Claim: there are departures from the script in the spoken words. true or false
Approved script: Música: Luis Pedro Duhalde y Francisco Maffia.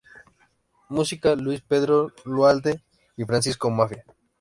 false